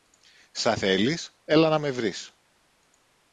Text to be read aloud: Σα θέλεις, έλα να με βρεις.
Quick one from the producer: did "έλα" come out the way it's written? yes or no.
yes